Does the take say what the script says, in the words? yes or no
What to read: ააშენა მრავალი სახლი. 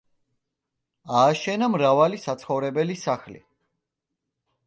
no